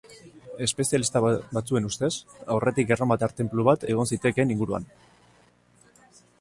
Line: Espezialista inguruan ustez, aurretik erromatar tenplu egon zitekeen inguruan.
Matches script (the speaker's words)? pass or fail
fail